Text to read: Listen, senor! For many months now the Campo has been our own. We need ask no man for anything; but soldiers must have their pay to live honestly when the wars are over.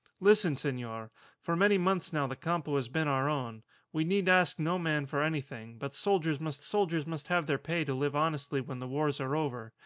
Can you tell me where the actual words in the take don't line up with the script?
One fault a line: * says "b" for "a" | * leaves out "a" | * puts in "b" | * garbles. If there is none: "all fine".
* puts in "soldiers must"